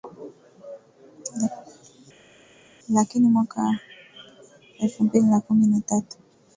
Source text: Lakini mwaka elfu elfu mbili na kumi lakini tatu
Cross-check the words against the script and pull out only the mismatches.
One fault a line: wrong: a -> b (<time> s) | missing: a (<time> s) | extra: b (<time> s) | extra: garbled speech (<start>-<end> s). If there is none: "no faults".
missing: elfu (5.0 s)
wrong: lakini -> na (5.7 s)